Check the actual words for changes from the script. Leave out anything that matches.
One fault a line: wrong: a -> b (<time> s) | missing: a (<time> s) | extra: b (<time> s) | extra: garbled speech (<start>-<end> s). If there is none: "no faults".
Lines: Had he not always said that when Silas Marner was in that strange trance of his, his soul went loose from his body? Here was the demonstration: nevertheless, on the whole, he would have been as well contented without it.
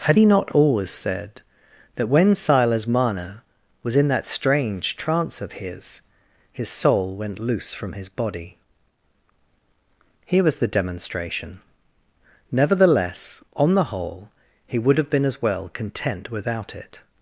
wrong: contented -> content (15.7 s)